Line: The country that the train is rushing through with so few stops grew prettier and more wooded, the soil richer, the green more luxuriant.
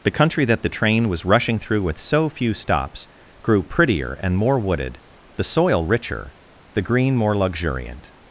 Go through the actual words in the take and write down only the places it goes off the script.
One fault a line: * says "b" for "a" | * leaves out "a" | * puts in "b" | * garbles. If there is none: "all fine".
* says "was" for "is"